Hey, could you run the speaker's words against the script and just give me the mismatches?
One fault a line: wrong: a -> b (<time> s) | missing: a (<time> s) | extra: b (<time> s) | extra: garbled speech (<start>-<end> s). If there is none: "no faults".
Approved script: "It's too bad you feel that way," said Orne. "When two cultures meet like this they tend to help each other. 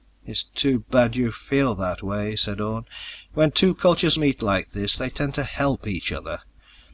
no faults